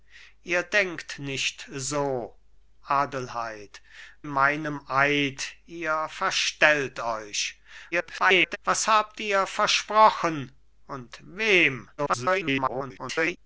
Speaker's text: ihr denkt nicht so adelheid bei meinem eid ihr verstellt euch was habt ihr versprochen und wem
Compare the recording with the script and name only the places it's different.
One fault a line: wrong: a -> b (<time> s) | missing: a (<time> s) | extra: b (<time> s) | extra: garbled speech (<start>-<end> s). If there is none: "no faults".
missing: bei (3.8 s)
extra: garbled speech (7.9-8.6 s)
extra: garbled speech (12.0-13.4 s)